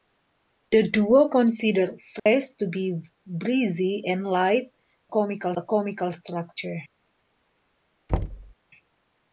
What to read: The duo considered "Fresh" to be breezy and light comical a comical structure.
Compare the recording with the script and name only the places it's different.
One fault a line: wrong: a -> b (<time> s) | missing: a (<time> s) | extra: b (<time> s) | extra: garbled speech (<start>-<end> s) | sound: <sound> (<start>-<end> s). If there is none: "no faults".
sound: dropout (2.2-2.3 s)
sound: thud (8.1-8.5 s)